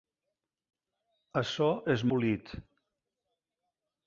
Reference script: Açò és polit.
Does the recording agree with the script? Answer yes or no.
yes